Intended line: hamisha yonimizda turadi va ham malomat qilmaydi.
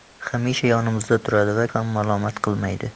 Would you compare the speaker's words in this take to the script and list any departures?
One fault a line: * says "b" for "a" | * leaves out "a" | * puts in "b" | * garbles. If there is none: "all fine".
all fine